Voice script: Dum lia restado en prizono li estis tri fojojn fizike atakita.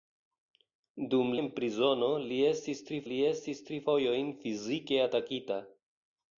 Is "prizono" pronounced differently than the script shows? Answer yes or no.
yes